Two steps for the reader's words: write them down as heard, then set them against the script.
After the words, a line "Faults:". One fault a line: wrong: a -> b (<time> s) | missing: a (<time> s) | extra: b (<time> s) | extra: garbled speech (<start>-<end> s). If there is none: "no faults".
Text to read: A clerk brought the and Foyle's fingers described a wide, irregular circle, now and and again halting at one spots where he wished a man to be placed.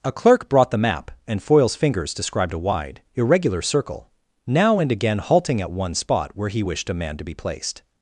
A clerk brought the map, and Foyle's fingers described a wide, irregular circle, now and again halting at one spot where he wished a man to be placed.
Faults:
extra: map (0.8 s)
missing: and (4.9 s)
wrong: spots -> spot (5.9 s)